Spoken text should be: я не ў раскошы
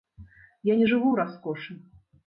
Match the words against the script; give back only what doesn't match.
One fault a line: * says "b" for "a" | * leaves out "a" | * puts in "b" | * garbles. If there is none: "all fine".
* puts in "жыву"